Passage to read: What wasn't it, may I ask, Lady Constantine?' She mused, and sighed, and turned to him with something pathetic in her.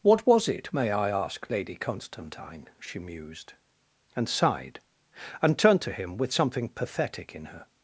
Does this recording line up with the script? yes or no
no